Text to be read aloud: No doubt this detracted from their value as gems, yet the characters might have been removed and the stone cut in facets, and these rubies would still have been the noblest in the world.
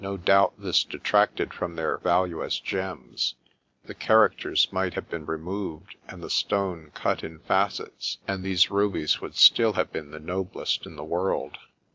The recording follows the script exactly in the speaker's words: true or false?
false